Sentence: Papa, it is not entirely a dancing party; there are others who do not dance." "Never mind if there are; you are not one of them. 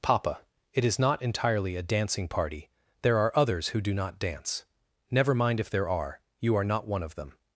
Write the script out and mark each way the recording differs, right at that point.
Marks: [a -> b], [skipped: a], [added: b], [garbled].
Papa, it is not entirely a dancing party; there are others who do not dance." "Never mind if there are; you are not one of them.